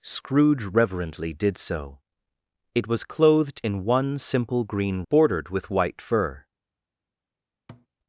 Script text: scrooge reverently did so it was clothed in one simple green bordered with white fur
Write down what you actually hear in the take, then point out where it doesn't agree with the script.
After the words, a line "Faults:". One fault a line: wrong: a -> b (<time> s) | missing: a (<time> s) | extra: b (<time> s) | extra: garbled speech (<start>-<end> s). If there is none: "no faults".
scrooge reverently did so it was clothed in one simple green bordered with white fur
Faults:
no faults